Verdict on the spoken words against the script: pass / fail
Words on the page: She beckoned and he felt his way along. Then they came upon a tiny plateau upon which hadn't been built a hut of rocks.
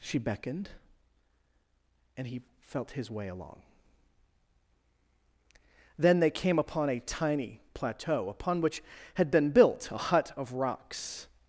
fail